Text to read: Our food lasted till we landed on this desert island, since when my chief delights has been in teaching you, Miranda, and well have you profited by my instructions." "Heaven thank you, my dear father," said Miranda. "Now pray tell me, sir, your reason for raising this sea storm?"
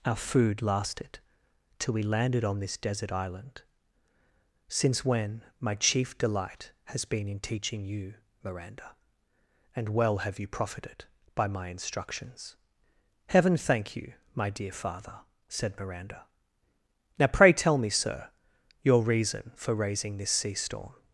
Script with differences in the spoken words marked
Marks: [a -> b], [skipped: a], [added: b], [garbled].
Our food lasted till we landed on this desert island, since when my chief [delights -> delight] has been in teaching you, Miranda, and well have you profited by my instructions." "Heaven thank you, my dear father," said Miranda. "Now pray tell me, sir, your reason for raising this sea storm?"